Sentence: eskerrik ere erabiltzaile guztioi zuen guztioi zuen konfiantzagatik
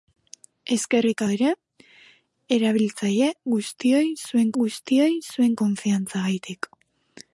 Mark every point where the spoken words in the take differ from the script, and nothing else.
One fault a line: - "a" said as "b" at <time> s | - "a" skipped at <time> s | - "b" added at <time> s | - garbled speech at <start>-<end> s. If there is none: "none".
none